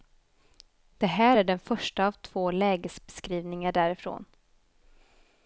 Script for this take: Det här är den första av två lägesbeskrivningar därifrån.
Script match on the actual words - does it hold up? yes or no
yes